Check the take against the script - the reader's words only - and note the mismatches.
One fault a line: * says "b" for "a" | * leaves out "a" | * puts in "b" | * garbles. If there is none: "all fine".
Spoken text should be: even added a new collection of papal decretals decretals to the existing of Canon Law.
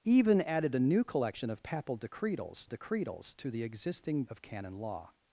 all fine